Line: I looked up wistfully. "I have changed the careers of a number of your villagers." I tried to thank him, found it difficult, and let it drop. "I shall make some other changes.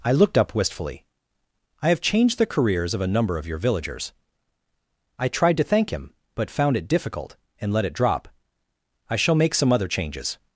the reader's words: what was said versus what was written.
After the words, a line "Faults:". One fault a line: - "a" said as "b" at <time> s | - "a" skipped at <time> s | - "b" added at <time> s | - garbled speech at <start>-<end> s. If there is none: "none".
I looked up wistfully. "I have changed the careers of a number of your villagers." I tried to thank him, but found it difficult, and let it drop. "I shall make some other changes.
Faults:
- "but" added at 6.3 s